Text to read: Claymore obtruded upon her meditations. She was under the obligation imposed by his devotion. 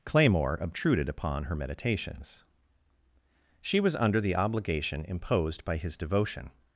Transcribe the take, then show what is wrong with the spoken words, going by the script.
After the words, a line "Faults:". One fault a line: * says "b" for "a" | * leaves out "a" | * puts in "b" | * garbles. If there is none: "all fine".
Claymore obtruded upon her meditations. She was under the obligation imposed by his devotion.
Faults:
all fine